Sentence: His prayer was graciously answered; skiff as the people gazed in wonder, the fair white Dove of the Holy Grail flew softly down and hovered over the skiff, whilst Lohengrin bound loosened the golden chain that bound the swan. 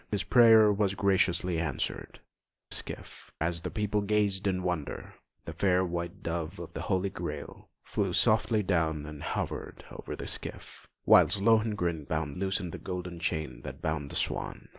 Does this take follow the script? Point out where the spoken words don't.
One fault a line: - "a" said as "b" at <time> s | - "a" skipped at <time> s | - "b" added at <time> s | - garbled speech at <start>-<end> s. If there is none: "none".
none